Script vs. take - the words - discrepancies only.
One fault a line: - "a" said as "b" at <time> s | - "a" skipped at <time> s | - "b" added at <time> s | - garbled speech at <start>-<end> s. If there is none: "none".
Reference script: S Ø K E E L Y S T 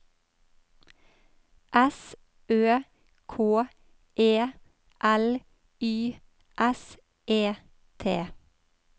- "E" skipped at 4.3 s
- "E" added at 7.3 s